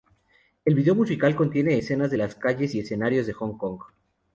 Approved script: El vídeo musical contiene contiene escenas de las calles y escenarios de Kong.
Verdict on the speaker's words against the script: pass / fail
fail